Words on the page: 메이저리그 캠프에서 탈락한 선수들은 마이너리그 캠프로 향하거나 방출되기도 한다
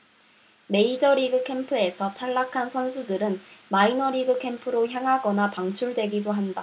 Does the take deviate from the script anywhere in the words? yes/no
no